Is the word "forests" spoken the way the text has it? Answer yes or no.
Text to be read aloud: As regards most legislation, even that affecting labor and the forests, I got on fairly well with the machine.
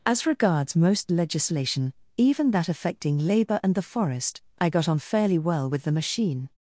no